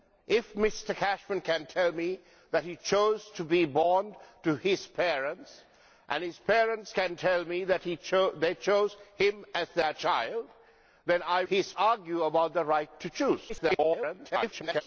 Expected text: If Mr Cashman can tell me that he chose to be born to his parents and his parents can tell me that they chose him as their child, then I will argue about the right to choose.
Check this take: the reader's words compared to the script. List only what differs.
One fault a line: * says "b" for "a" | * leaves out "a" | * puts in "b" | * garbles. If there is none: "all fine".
* says "his" for "will"
* garbles